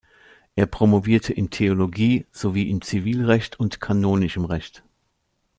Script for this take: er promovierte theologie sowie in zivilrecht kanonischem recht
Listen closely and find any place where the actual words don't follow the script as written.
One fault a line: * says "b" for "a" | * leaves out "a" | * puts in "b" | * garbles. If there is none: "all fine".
* puts in "in"
* puts in "und"